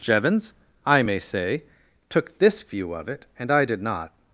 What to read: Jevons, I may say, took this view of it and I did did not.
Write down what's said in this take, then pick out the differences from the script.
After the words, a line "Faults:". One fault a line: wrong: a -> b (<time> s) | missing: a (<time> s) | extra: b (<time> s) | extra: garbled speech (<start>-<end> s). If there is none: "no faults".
Jevons, I may say, took this view of it and I did not.
Faults:
missing: did (3.8 s)